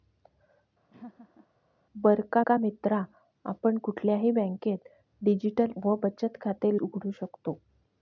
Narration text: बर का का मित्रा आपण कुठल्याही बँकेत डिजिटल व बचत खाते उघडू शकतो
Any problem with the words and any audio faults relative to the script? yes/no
yes